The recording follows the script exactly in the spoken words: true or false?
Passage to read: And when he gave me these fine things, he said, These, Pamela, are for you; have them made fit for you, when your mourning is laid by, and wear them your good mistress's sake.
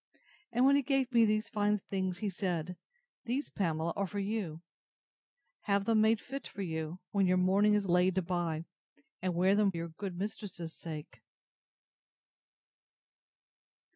true